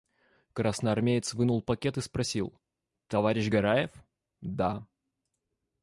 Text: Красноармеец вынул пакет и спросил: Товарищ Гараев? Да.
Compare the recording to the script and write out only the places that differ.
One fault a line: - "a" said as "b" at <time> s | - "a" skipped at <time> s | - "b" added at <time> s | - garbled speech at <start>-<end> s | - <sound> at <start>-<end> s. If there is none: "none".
none